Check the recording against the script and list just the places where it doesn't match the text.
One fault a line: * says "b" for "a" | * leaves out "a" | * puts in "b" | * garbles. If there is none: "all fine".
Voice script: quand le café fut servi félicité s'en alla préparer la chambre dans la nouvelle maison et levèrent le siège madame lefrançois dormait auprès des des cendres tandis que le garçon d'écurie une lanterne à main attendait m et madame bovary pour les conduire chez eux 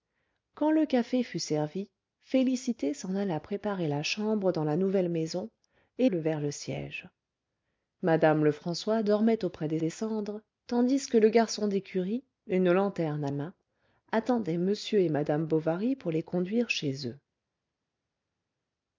all fine